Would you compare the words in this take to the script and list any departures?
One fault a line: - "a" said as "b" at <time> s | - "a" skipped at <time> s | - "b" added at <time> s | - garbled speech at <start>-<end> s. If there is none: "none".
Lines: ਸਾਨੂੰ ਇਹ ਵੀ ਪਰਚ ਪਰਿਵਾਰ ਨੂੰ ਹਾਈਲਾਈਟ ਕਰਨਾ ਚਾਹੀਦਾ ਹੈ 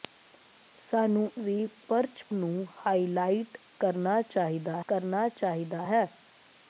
- "ਇਹ" skipped at 1.3 s
- "ਪਰਿਵਾਰ" skipped at 2.2 s
- "ਕਰਨਾ ਚਾਹੀਦਾ" added at 4.9 s